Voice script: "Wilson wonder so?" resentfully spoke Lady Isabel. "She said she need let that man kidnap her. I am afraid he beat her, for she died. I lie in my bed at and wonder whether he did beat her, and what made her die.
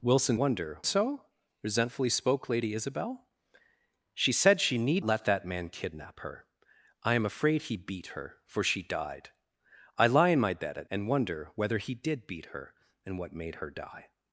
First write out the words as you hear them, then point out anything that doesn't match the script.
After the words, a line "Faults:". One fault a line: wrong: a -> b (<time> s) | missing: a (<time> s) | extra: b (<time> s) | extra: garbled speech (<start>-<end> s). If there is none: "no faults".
"Wilson wonder so?" resentfully spoke Lady Isabel. "She said she need let that man kidnap her. I am afraid he beat her, for she died. I lie in my bed at and wonder whether he did beat her, and what made her die.
Faults:
no faults